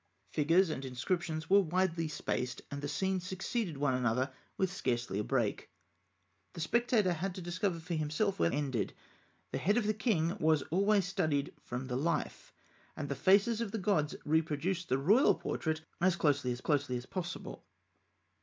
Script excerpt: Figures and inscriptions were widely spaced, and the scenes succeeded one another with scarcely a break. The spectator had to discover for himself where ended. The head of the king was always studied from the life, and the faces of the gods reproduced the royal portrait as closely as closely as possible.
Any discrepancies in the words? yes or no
no